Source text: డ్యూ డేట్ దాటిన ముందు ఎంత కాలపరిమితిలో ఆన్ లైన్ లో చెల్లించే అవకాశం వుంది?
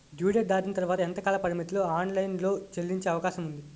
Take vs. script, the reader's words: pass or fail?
fail